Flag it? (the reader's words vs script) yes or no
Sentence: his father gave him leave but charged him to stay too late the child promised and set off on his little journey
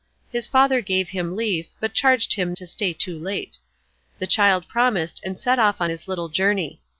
no